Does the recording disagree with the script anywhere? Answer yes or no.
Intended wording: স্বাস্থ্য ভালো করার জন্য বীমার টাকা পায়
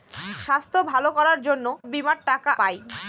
no